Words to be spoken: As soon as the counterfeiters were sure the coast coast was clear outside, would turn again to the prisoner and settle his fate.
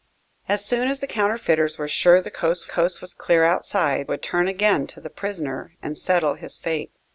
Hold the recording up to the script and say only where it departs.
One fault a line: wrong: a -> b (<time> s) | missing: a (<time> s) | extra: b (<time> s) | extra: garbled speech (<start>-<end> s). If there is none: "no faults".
no faults